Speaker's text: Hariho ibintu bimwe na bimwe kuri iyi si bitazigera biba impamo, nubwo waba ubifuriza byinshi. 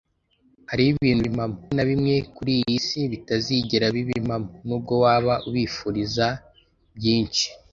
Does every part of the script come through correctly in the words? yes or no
no